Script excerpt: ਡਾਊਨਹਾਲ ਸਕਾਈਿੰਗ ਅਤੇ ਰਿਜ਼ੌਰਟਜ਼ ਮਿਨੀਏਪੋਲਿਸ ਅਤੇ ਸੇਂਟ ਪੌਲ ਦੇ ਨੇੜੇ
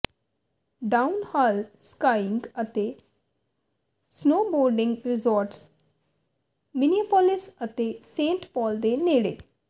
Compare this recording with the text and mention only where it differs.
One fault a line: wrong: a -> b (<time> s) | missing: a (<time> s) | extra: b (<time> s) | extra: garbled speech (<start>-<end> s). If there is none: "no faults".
extra: ਸਨੋਬੋਰਡਿੰਗ (4.1 s)